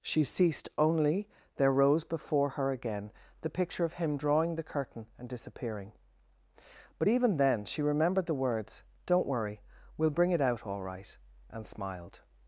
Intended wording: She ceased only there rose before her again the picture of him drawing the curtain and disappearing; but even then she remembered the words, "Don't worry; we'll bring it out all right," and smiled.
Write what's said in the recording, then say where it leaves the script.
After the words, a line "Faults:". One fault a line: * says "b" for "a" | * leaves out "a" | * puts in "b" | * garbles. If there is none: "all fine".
She ceased only there rose before her again the picture of him drawing the curtain and disappearing; but even then she remembered the words, "Don't worry; we'll bring it out all right," and smiled.
Faults:
all fine